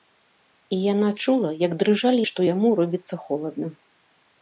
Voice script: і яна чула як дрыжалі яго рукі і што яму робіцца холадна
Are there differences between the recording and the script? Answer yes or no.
yes